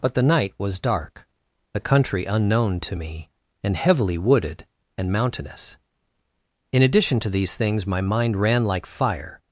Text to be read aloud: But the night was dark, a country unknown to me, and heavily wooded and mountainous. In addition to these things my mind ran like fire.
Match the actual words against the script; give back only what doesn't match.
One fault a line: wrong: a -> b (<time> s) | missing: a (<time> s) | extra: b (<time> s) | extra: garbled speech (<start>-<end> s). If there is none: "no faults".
no faults